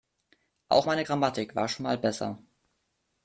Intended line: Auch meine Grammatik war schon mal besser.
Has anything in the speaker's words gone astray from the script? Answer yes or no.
no